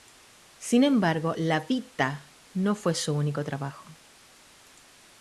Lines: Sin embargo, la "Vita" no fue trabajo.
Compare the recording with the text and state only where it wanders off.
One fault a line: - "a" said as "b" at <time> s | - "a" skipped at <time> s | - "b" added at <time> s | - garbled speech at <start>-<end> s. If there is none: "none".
- "su único" added at 2.9 s